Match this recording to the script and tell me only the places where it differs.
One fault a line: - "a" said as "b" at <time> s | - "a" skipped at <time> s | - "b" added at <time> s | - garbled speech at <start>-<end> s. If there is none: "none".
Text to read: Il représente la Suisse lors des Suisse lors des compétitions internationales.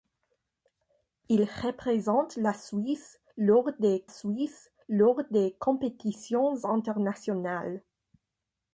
none